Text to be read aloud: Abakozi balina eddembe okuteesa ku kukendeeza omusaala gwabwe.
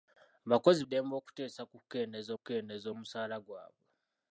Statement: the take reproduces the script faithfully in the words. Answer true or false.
false